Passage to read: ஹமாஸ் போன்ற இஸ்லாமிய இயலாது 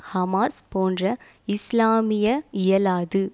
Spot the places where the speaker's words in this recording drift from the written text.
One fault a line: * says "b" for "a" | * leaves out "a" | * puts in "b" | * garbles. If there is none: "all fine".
all fine